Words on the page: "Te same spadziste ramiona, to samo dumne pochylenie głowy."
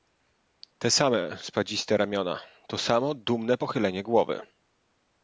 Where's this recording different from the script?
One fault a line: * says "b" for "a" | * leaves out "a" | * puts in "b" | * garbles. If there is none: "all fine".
all fine